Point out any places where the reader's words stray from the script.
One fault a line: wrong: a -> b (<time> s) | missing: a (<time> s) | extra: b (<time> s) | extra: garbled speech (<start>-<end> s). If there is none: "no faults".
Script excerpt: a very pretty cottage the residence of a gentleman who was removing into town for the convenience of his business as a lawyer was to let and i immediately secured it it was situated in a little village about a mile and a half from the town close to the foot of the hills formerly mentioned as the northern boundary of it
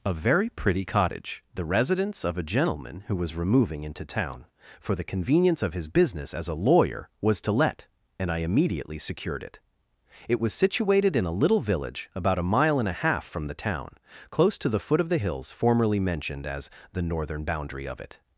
no faults